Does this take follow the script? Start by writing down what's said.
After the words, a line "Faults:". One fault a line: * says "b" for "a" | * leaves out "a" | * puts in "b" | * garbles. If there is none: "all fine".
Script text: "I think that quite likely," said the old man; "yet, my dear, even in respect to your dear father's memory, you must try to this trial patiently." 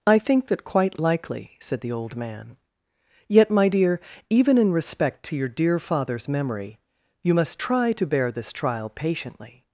"I think that quite likely," said the old man; "yet, my dear, even in respect to your dear father's memory, you must try to bear this trial patiently."
Faults:
* puts in "bear"